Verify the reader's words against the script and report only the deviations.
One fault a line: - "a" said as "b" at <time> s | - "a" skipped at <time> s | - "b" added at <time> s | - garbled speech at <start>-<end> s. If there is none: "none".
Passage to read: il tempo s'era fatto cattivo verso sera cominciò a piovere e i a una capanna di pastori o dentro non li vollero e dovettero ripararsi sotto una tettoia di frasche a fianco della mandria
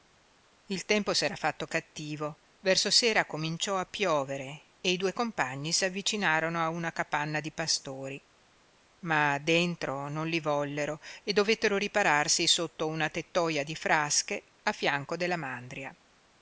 - "due compagni s'avvicinarono" added at 5.0 s
- "o" said as "ma" at 9.0 s